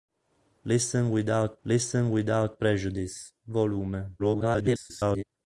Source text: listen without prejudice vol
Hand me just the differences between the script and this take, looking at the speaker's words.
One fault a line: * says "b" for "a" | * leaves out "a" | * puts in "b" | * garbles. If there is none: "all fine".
* puts in "listen without"
* garbles